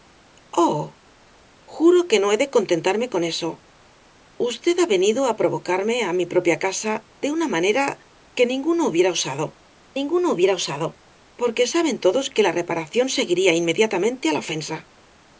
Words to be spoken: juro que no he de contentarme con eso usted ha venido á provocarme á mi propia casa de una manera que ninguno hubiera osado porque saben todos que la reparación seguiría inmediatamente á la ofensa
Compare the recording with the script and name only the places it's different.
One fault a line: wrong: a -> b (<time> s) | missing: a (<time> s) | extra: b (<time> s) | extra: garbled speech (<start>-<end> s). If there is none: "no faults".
extra: ninguno hubiera osado (10.0 s)